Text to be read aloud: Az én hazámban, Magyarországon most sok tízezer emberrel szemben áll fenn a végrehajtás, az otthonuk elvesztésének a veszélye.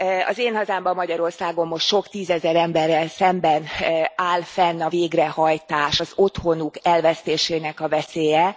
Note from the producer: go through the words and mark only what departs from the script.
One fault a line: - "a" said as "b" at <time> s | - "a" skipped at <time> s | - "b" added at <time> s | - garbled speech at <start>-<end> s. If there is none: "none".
none